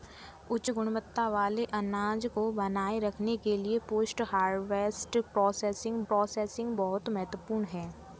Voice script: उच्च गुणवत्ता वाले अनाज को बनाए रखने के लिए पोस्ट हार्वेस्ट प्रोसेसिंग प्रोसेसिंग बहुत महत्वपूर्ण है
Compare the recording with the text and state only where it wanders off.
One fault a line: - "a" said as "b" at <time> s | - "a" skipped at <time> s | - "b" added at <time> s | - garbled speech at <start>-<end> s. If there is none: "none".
none